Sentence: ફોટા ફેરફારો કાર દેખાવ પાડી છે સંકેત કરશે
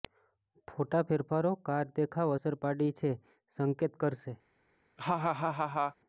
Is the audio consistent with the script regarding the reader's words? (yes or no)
no